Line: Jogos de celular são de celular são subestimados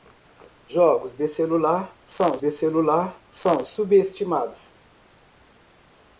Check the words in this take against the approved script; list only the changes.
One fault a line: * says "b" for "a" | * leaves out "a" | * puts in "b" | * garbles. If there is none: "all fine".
all fine